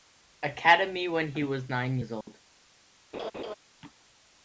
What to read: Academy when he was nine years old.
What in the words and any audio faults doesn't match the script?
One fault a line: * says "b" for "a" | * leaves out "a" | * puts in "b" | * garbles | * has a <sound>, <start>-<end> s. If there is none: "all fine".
* has a dropout, 2.2-2.3 s
* has a laugh, 3.1-3.5 s